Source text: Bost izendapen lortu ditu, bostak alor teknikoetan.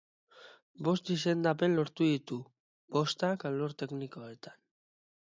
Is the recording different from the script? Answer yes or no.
no